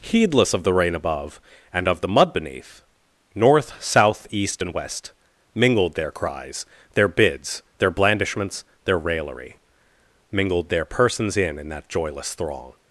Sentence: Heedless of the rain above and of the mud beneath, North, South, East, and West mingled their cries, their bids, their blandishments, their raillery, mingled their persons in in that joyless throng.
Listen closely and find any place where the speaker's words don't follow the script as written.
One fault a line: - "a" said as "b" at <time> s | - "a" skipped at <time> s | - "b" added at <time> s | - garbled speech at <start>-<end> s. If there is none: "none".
none